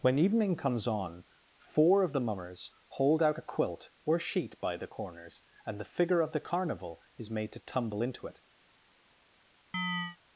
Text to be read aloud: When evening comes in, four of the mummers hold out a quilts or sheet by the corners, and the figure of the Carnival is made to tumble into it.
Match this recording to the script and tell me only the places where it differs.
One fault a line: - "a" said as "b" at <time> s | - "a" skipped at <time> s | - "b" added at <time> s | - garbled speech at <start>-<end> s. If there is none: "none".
- "in" said as "on" at 0.9 s
- "quilts" said as "quilt" at 3.4 s